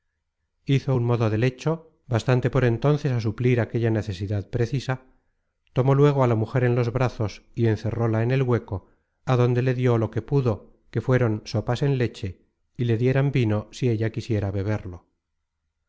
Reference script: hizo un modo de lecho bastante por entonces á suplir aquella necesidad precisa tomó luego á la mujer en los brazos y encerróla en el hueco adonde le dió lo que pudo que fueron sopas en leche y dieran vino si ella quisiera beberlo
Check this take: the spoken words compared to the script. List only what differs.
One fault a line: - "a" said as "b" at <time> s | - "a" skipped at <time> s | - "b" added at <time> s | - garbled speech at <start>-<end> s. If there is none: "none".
- "le" added at 12.8 s